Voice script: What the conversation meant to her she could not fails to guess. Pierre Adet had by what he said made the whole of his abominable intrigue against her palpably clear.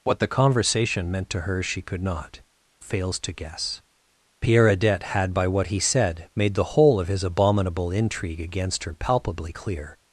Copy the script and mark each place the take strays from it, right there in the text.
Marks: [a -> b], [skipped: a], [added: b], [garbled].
What the conversation meant to her she could not fails to guess. Pierre Adet had by what he said made the whole of his abominable intrigue against her palpably clear.